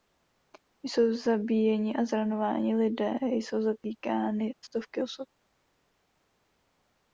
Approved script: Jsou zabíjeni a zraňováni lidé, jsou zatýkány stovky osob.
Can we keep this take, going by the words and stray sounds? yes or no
yes